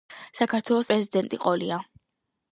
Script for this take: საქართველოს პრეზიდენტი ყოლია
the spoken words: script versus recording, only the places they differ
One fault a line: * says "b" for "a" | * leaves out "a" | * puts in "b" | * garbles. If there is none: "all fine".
all fine